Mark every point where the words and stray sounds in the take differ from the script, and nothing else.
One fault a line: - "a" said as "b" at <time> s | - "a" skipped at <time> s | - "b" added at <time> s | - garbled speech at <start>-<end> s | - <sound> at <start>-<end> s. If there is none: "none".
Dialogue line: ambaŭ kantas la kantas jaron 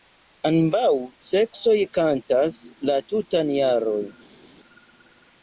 - "seksoj" added at 1.3 s
- "kantas" said as "tutan" at 3.1 s